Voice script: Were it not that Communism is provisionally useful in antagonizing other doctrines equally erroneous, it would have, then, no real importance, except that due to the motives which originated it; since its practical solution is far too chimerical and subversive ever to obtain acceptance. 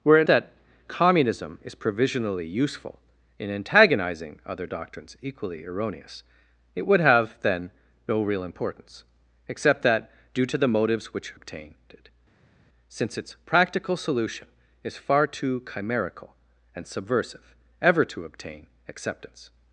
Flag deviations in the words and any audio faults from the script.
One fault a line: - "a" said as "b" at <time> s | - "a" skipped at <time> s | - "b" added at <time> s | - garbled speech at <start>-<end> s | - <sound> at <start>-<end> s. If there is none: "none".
- "not" skipped at 0.3 s
- "originated" said as "obtain" at 11.3 s